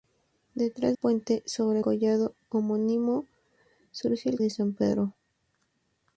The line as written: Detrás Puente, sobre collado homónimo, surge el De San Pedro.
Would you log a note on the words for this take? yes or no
no